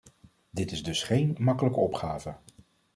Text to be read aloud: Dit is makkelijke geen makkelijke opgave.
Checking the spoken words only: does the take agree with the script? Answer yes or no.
no